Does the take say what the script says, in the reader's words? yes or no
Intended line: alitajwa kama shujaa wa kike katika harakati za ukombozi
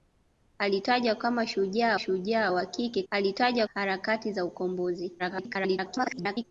no